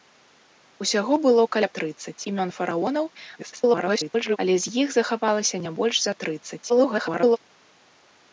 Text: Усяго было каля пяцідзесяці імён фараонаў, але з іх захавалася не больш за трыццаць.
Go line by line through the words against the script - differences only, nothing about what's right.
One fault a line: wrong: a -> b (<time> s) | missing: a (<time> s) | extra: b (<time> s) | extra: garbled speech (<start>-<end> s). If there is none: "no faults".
wrong: пяцідзесяці -> трыццаць (1.8 s)
extra: garbled speech (3.4-4.4 s)
extra: garbled speech (6.7-7.4 s)